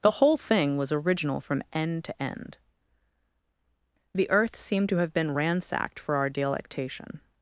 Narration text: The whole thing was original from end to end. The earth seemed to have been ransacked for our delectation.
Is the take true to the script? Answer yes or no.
yes